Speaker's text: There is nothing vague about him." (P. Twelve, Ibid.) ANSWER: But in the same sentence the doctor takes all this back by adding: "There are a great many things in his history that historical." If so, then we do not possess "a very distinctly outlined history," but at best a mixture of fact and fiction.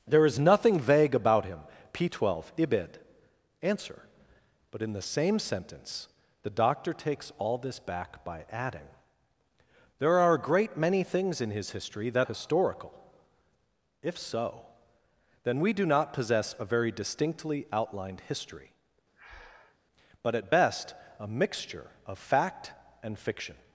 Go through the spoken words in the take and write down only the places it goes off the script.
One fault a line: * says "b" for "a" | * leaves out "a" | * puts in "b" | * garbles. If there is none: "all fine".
all fine